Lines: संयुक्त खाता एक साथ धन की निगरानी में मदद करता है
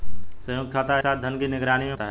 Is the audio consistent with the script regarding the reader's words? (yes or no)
no